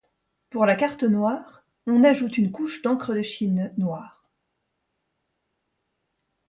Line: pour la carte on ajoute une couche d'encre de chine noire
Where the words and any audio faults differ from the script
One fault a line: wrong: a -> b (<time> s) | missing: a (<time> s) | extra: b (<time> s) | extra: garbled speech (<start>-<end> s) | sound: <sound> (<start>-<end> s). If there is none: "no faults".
extra: noire (1.0 s)